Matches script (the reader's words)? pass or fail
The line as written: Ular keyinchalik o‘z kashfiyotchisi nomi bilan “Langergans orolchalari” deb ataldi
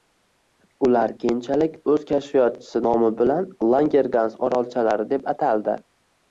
pass